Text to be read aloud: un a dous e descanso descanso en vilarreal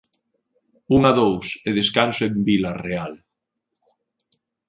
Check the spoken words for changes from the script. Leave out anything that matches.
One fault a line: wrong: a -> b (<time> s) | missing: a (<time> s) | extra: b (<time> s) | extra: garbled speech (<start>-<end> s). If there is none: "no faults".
missing: descanso (2.2 s)